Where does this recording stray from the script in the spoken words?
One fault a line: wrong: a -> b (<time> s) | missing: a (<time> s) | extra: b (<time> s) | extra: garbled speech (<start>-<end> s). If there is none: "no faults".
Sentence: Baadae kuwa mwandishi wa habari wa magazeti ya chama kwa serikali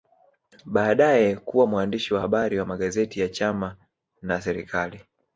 wrong: kwa -> na (4.2 s)